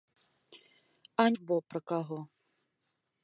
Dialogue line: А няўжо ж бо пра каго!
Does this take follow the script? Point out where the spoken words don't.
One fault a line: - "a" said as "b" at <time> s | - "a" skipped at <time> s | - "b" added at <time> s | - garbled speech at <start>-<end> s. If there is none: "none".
- "няўжо" skipped at 1.3 s